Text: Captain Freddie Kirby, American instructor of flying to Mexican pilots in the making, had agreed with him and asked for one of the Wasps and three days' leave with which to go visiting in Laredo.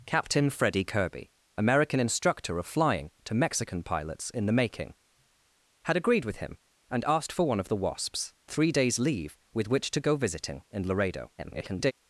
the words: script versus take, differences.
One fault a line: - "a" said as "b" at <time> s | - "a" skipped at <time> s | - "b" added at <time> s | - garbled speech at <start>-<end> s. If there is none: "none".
- "and" skipped at 8.3 s
- garbled speech at 11.4-11.9 s